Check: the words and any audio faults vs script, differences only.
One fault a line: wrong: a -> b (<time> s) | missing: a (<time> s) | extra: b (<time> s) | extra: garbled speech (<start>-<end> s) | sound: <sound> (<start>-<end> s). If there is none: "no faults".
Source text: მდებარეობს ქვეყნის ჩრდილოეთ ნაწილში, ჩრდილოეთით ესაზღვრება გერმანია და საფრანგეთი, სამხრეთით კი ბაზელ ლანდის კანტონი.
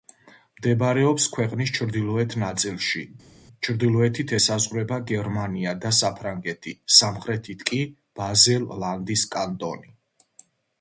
no faults